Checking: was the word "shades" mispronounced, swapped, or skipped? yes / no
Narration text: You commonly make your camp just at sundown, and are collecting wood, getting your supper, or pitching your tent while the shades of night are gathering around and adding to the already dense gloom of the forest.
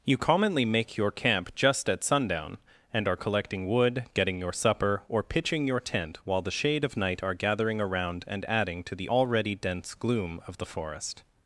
yes